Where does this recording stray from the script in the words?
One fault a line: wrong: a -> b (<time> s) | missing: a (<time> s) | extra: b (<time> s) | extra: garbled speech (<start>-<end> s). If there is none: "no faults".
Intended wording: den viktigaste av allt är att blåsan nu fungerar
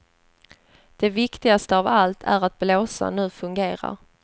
wrong: den -> det (0.9 s)